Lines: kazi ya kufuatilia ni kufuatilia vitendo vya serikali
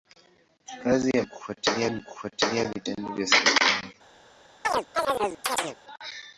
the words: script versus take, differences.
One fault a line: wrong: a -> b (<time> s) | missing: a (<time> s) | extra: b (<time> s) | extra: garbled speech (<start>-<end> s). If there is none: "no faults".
no faults